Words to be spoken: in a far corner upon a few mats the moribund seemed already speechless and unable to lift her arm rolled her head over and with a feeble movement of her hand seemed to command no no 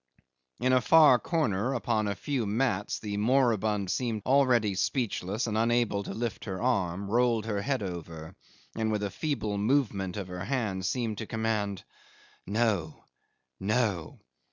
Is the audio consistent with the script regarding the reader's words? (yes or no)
yes